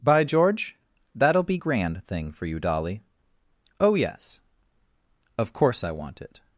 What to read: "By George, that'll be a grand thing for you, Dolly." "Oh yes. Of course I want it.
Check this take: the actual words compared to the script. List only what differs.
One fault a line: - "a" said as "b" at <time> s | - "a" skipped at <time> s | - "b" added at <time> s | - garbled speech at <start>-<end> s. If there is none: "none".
- "a" skipped at 1.6 s